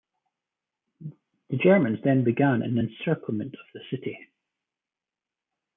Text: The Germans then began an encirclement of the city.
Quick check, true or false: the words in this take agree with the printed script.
true